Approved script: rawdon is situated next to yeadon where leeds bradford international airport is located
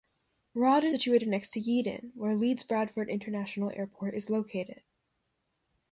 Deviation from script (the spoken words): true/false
true